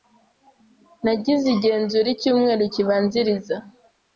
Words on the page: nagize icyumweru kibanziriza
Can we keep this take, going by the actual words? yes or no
no